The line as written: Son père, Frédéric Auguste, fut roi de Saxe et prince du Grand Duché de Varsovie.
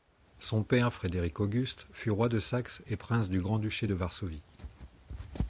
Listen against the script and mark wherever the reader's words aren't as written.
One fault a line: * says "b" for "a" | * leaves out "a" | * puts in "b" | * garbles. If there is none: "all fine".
all fine